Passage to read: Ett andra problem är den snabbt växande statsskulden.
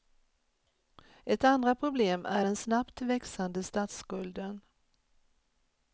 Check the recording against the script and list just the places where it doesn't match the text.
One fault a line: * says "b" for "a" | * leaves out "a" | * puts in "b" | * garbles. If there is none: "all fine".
all fine